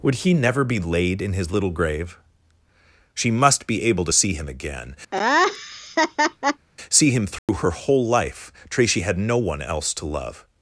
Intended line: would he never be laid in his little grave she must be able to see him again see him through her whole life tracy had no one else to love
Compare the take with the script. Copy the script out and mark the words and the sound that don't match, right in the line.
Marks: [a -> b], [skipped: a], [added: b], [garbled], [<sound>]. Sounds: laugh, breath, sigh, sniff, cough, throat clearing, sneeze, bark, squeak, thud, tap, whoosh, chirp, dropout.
would he never be laid in his little grave she must be able to see him again [laugh] see him through [dropout] her whole life tracy had no one else to love